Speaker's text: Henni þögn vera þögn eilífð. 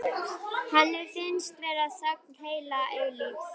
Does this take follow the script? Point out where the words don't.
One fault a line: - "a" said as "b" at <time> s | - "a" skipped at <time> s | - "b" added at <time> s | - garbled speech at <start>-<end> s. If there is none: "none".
- "þögn" said as "finnst" at 1.1 s
- "heila" added at 2.4 s